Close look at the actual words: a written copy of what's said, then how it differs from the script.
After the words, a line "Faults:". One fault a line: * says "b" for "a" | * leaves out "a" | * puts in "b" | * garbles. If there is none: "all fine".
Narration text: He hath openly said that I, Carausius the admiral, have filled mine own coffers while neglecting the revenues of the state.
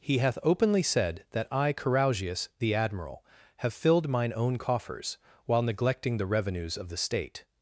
He hath openly said that I, Carausius the admiral, have filled mine own coffers while neglecting the revenues of the state.
Faults:
all fine